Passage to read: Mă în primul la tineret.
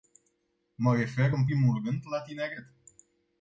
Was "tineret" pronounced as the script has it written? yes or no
yes